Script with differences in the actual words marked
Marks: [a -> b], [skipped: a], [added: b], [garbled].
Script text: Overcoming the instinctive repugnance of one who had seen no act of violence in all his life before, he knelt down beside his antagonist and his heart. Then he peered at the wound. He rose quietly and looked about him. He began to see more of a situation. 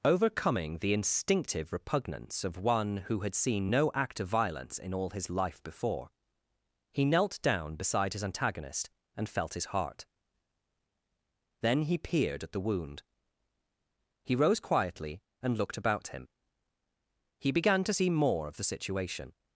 Overcoming the instinctive repugnance of one who had seen no act of violence in all his life before, he knelt down beside his antagonist and [added: felt] his heart. Then he peered at the wound. He rose quietly and looked about him. He began to see more of [a -> the] situation.